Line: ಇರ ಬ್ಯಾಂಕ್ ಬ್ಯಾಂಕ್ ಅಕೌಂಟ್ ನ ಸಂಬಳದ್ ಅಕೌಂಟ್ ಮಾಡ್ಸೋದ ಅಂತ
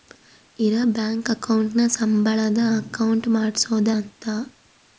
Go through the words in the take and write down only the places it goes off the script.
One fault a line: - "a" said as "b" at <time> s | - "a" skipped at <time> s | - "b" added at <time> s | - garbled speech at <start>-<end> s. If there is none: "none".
- "ಬ್ಯಾಂಕ್" skipped at 1.3 s